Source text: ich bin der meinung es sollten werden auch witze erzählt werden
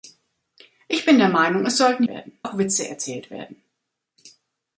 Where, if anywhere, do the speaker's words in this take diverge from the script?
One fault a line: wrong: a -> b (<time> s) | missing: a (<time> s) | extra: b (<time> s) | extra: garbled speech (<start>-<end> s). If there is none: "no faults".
no faults